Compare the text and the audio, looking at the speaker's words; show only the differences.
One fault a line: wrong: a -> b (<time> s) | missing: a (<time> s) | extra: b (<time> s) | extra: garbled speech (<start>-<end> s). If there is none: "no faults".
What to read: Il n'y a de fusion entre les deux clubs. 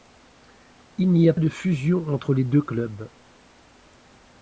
no faults